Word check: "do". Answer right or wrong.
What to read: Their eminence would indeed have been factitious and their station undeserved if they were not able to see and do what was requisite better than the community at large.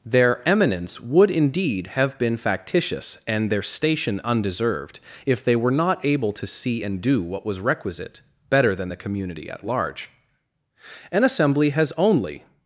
right